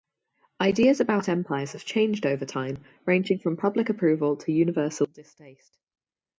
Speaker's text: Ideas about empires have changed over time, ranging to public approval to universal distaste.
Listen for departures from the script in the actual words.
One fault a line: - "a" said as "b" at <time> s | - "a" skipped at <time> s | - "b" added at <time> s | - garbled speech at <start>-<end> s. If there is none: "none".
- "to" said as "from" at 3.4 s